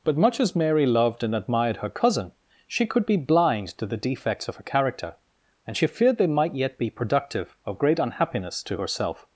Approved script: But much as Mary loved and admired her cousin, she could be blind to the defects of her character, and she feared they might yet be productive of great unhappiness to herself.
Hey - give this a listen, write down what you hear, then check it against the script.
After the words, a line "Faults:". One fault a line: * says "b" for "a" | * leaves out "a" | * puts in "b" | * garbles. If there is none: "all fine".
But much as Mary loved and admired her cousin, she could be blind to the defects of her character, and she feared they might yet be productive of great unhappiness to herself.
Faults:
all fine